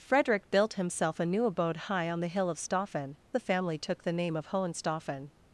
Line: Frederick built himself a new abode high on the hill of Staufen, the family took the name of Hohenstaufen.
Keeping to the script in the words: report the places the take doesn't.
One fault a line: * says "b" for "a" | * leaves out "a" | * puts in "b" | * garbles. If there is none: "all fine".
all fine